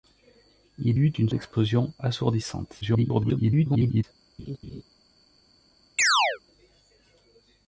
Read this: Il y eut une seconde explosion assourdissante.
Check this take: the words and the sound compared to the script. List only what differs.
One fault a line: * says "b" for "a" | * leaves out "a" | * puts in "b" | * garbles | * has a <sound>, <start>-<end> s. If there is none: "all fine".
* leaves out "y"
* leaves out "seconde"
* garbles
* has a laugh, 4.4-4.8 s
* has a chirp, 6.0-6.4 s